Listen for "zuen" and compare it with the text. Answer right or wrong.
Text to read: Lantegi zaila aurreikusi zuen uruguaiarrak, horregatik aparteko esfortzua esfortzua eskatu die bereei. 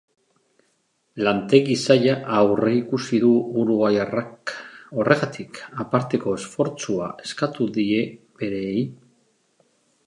wrong